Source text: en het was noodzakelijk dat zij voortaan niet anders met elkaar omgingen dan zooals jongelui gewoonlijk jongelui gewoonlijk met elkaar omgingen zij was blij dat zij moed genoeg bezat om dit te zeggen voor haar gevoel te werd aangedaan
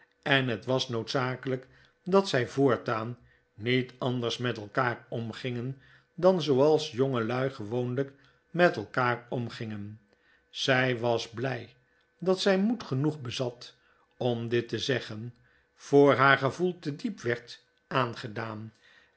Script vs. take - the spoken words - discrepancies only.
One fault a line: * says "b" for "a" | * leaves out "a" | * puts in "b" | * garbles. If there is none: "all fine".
* leaves out "jongelui gewoonlijk"
* puts in "diep"